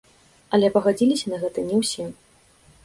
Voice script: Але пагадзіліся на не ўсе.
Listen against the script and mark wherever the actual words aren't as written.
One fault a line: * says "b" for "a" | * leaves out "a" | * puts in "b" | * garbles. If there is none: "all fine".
* puts in "гэта"